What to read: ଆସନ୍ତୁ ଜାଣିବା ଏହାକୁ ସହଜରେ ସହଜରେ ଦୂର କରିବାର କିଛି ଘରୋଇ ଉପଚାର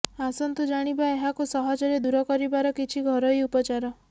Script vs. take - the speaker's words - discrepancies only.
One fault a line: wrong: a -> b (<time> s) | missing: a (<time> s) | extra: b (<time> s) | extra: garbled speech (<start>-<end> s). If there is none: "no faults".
missing: ସହଜରେ (2.0 s)